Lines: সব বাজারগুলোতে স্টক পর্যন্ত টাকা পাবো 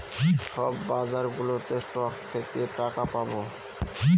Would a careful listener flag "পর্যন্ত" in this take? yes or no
yes